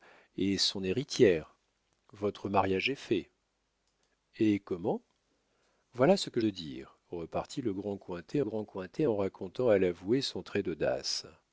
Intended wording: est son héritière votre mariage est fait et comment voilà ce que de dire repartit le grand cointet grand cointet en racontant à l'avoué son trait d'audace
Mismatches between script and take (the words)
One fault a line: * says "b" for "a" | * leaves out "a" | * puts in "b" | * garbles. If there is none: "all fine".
all fine